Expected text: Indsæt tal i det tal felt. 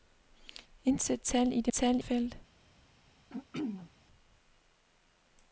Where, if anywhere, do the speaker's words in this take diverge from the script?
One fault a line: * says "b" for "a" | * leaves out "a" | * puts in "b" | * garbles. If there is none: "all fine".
all fine